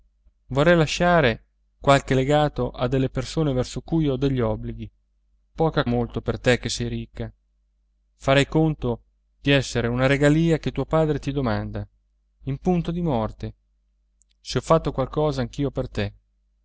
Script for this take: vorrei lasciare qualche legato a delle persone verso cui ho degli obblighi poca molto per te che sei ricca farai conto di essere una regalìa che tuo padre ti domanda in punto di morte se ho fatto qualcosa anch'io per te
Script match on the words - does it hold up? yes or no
yes